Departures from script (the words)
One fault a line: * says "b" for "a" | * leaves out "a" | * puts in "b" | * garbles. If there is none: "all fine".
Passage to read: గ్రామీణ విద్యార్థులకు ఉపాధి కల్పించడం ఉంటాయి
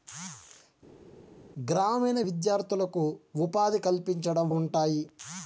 all fine